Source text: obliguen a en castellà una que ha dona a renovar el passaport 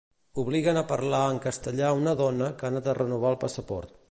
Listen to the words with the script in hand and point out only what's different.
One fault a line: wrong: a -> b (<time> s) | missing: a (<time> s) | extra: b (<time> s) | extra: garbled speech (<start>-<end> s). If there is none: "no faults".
extra: parlar (0.9 s)
extra: dona (2.2 s)
wrong: dona -> anat (2.7 s)